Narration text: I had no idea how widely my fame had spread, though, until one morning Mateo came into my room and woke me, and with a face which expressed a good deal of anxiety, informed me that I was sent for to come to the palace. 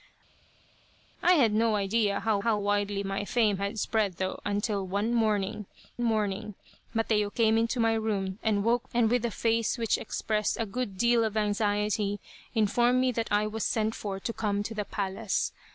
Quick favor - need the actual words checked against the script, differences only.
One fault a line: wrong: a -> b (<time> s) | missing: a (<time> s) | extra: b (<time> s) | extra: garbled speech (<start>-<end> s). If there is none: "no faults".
extra: how (2.4 s)
extra: morning (6.0 s)
missing: me (8.9 s)